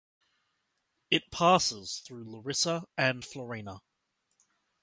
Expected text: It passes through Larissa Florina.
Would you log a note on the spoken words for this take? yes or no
yes